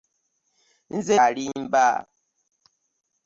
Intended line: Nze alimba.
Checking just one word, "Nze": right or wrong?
right